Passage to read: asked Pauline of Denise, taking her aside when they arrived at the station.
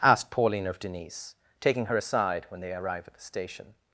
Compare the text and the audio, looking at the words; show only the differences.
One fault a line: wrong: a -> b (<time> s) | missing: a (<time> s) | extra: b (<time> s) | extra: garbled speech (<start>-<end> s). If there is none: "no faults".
wrong: arrived -> arrive (2.7 s)